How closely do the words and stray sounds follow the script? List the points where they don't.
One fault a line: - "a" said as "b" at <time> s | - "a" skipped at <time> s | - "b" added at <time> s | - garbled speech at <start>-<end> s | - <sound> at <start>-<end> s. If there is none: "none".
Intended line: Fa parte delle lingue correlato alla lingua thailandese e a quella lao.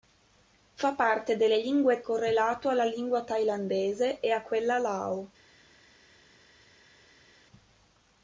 none